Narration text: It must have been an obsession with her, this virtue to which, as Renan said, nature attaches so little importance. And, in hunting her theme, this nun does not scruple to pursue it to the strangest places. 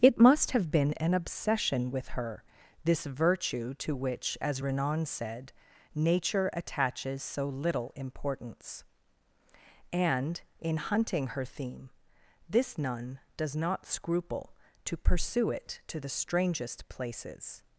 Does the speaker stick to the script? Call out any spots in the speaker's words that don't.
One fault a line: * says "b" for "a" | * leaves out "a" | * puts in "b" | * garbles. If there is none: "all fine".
all fine